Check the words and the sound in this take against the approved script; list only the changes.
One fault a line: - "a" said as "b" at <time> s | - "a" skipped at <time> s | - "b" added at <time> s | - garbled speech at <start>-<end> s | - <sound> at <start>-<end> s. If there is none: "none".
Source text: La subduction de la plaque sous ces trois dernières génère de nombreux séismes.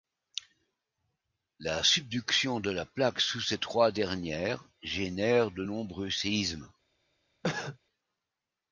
- cough at 7.4-7.8 s